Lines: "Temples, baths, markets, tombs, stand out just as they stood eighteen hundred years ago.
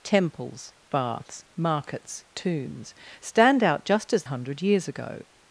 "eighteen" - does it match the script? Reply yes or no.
no